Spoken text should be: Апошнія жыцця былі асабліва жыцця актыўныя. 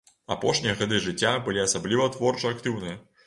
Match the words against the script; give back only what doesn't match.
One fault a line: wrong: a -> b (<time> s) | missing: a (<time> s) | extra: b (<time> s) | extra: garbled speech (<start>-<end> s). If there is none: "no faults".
extra: гады (0.8 s)
wrong: жыцця -> творча (2.2 s)